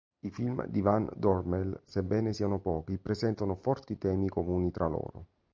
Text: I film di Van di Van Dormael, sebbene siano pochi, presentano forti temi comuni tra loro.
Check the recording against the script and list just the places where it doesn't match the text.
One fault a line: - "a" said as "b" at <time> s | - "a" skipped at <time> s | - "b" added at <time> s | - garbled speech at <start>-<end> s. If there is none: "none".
- "di Van" skipped at 1.1 s